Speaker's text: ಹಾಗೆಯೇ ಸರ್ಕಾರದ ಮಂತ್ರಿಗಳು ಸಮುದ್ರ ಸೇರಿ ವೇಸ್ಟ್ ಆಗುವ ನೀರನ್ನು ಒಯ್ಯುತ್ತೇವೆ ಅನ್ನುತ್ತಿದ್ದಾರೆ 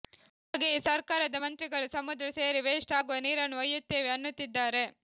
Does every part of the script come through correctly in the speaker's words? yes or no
yes